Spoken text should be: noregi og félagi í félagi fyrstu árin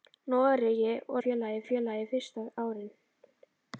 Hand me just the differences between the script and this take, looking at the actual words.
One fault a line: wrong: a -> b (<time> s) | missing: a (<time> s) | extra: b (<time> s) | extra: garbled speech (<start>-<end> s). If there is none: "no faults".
no faults